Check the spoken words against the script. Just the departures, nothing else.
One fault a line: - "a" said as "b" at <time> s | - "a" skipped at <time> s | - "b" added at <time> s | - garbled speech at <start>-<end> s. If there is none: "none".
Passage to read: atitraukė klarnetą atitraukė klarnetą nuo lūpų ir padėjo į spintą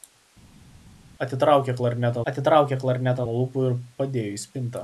none